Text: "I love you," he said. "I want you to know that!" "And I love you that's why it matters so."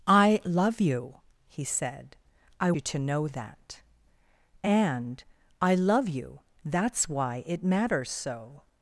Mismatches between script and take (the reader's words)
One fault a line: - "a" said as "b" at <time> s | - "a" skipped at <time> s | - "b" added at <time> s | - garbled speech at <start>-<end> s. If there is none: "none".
- "want" skipped at 2.7 s